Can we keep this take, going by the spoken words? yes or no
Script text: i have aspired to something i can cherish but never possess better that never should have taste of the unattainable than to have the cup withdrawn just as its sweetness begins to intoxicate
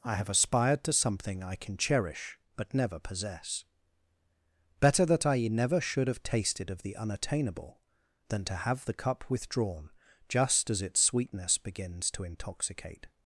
no